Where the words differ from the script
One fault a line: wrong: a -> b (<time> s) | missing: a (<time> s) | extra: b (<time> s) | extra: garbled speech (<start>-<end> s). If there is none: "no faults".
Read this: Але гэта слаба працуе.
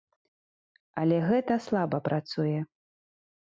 no faults